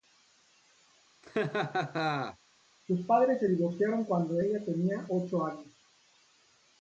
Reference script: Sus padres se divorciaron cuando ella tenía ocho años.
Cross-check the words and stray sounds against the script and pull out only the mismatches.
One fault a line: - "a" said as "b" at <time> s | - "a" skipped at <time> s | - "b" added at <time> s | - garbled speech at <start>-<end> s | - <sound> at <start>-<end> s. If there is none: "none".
- laugh at 1.2-2.4 s